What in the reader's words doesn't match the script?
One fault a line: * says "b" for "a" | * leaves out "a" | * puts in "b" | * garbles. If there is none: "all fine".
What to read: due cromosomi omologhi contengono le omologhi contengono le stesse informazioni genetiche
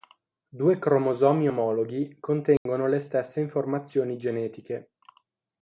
* leaves out "omologhi contengono le"